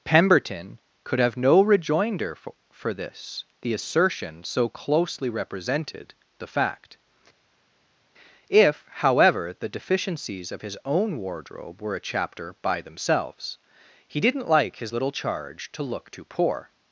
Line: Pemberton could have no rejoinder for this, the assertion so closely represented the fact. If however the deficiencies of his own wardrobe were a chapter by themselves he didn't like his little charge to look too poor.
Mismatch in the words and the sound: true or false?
true